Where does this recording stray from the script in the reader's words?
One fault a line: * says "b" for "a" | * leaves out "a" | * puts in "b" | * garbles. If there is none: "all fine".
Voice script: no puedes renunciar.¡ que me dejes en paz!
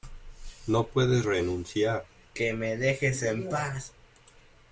all fine